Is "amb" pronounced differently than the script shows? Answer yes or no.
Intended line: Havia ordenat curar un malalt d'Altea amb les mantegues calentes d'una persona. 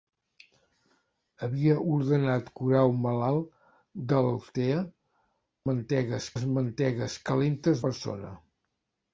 yes